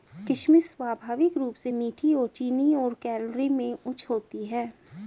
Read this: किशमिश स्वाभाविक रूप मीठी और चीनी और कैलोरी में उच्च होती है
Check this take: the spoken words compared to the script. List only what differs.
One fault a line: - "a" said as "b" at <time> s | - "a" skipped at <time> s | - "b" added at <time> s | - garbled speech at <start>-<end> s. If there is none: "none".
- "से" added at 1.6 s